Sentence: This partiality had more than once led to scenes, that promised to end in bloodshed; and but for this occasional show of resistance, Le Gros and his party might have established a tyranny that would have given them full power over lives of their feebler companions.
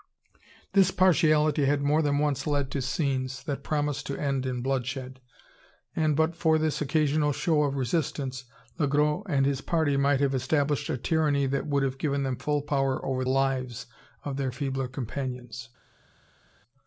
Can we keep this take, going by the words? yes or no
yes